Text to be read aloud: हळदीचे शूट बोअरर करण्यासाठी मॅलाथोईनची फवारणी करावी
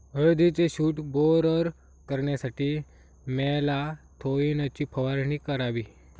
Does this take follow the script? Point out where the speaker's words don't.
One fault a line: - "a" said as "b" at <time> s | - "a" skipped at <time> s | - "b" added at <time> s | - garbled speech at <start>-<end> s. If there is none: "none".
none